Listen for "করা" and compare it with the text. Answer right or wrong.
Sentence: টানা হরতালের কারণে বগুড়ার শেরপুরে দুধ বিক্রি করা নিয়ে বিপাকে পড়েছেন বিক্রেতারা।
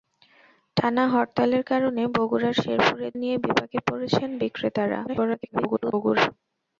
wrong